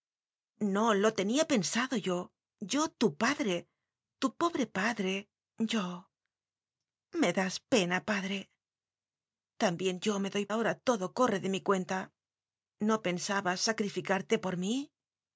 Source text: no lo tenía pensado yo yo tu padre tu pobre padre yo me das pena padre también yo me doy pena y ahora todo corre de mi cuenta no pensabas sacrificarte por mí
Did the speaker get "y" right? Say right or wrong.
wrong